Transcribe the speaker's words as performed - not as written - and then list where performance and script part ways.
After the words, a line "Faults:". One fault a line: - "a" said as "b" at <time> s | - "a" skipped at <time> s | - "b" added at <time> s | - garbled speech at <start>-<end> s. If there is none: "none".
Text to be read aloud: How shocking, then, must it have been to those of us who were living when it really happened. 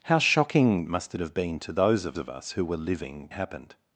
How shocking, must it have been to those of of us who were living happened.
Faults:
- "then" skipped at 0.9 s
- "of" added at 2.2 s
- "when it really" skipped at 3.3 s